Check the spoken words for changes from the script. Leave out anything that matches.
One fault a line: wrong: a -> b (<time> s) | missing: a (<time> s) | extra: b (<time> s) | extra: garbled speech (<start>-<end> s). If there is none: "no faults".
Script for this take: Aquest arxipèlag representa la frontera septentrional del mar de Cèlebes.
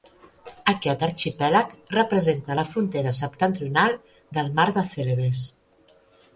no faults